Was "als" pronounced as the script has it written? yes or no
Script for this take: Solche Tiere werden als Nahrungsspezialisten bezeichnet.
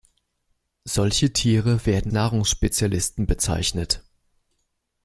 no